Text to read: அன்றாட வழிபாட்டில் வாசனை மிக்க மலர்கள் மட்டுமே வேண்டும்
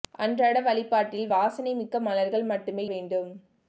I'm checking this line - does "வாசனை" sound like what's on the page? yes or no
yes